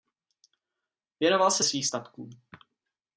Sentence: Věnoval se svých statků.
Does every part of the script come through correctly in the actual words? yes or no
yes